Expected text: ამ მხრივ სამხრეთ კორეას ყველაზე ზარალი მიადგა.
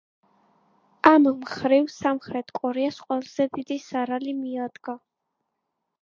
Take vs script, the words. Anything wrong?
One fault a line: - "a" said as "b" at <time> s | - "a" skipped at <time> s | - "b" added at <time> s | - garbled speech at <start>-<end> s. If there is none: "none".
- "დიდი" added at 3.6 s